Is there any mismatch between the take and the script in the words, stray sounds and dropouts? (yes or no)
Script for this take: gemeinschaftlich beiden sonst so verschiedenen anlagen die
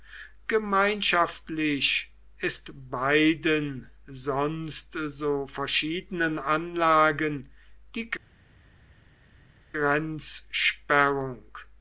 yes